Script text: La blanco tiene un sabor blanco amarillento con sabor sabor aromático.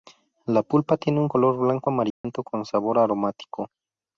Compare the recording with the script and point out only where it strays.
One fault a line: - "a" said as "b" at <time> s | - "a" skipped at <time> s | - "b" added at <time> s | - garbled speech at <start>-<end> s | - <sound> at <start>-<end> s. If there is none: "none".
- "blanco" said as "pulpa" at 0.6 s
- "sabor" said as "color" at 1.3 s
- dropout at 2.1-2.2 s
- "sabor" skipped at 3.0 s